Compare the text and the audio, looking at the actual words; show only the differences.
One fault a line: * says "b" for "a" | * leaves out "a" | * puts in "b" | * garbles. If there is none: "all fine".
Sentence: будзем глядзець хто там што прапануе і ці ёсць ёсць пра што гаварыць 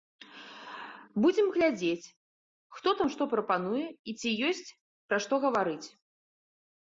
* leaves out "ёсць"